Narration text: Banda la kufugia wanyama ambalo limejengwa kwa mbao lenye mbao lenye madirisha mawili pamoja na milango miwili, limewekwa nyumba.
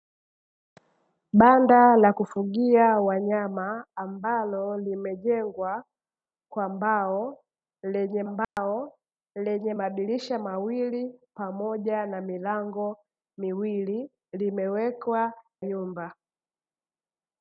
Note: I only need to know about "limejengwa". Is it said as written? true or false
true